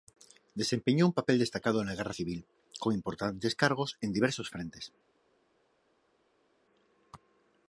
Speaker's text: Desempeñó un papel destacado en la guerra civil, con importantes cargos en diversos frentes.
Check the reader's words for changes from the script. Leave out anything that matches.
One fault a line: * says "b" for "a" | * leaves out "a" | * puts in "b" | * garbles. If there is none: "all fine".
all fine